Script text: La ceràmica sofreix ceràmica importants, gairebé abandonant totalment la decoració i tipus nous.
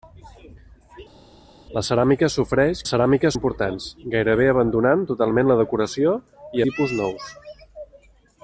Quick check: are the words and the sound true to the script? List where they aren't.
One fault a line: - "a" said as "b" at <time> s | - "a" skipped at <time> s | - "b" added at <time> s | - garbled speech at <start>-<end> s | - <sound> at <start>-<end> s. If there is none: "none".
none